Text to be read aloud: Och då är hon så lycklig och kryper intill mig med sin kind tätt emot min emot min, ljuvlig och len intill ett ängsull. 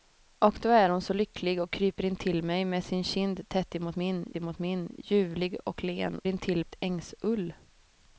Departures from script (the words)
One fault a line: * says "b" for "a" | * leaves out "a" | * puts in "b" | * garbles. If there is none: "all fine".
all fine